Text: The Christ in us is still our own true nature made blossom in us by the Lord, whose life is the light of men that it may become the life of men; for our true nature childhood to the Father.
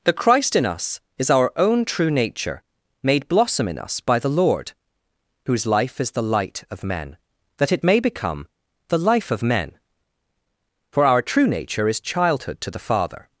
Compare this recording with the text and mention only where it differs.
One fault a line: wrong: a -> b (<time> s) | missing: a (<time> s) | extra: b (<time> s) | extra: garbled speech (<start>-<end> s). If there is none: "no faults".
missing: still (1.3 s)
extra: is (11.9 s)